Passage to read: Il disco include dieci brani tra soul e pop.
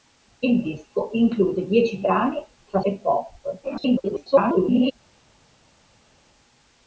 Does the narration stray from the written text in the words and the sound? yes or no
yes